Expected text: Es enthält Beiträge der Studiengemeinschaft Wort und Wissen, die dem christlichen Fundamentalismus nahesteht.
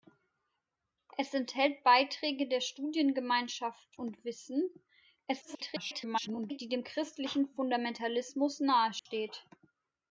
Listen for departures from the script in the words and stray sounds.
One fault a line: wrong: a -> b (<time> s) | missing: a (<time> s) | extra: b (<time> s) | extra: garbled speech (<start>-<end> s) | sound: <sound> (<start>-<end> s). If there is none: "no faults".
missing: Wort (3.9 s)
extra: garbled speech (5.3-6.6 s)
sound: dropout (9.0-9.1 s)